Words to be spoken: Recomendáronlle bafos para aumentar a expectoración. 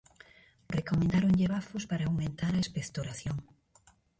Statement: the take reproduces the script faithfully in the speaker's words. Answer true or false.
true